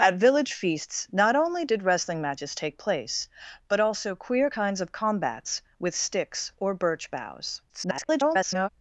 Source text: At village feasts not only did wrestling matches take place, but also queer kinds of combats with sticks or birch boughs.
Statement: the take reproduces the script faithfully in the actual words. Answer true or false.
false